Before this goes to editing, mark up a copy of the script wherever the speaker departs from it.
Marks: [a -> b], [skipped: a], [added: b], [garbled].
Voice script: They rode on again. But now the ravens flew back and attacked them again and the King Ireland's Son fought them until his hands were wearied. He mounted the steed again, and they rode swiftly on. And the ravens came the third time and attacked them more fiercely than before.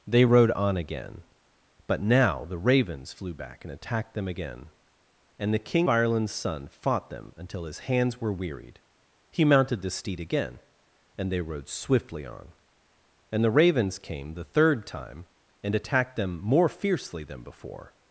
They rode on again. But now the ravens flew back and attacked them again and the King Ireland's Son fought them until his hands were wearied. He mounted the steed again, and they rode swiftly on. And the ravens came the third time and attacked them more fiercely than before.